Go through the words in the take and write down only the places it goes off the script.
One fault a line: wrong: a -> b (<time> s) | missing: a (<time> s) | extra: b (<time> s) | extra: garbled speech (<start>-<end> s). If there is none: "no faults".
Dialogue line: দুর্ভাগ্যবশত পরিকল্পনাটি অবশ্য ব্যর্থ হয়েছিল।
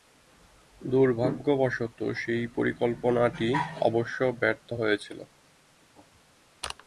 extra: সেই (2.1 s)